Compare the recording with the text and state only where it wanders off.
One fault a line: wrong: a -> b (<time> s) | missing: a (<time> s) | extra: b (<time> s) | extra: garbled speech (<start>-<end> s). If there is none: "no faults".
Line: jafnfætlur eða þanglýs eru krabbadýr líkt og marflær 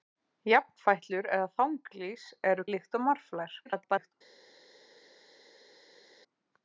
missing: krabbadýr (2.6 s)
extra: garbled speech (3.6-4.1 s)